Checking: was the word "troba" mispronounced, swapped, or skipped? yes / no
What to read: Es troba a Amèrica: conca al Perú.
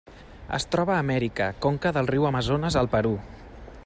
no